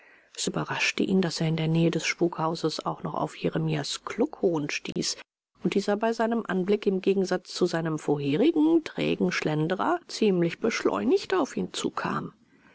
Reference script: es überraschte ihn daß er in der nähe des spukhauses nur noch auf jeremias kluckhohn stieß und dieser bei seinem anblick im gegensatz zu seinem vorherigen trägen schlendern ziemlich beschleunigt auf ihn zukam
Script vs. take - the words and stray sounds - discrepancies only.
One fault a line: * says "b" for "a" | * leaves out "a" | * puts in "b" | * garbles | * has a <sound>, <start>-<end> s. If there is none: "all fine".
* says "auch" for "nur"
* has a dropout, 4.9-5.0 s